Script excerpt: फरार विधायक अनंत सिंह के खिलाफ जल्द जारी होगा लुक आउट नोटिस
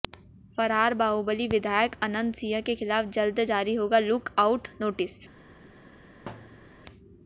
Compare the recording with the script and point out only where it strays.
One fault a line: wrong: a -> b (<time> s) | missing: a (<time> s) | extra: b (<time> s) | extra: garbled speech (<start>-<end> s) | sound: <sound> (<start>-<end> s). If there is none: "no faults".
extra: बाहुबली (1.0 s)
sound: thud (6.3-6.8 s)